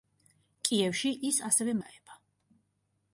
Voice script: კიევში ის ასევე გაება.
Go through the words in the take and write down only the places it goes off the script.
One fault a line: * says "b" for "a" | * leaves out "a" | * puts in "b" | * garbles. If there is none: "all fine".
all fine